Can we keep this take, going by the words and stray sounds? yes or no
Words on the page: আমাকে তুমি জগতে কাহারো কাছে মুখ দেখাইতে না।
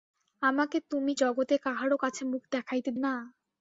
yes